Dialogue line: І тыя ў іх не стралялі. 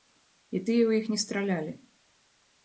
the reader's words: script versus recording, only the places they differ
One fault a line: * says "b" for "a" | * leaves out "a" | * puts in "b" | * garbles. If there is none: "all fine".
all fine